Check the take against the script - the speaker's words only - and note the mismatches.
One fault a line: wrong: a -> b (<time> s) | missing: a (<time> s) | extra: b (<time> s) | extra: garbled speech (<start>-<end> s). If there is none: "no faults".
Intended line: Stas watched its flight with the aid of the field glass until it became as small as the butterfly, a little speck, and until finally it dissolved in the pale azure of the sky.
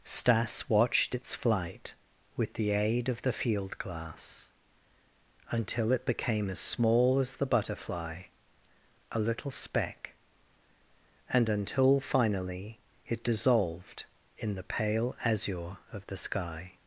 no faults